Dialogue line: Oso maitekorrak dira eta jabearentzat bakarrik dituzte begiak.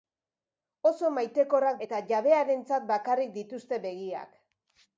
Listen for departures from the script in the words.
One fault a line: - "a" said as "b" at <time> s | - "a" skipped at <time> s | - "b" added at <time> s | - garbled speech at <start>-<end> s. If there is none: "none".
- "dira" skipped at 1.8 s